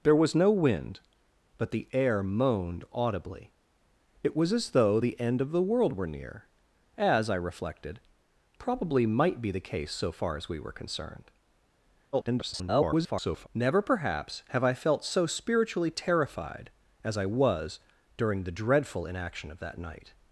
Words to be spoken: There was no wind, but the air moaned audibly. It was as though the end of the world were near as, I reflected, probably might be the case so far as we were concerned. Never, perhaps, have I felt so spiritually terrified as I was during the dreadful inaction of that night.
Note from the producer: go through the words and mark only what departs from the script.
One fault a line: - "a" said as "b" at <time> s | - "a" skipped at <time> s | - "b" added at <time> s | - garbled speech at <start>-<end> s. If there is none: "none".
- garbled speech at 12.1-13.5 s